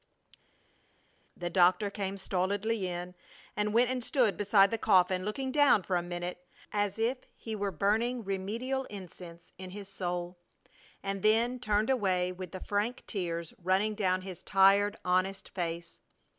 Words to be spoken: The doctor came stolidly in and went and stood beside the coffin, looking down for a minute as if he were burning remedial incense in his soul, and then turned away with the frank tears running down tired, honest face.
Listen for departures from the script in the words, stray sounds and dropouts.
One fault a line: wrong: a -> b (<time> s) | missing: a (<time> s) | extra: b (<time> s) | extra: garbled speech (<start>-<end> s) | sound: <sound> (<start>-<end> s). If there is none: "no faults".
extra: his (14.2 s)